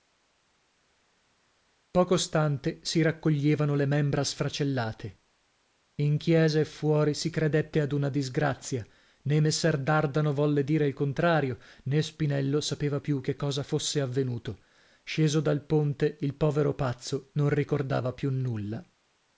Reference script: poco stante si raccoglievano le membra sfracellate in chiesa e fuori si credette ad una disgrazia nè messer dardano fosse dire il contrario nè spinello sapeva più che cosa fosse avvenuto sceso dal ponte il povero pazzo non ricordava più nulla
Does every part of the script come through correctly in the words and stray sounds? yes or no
no